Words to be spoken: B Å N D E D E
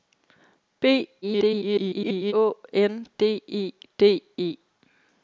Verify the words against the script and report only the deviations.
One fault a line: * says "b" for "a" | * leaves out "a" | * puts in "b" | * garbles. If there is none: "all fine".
* garbles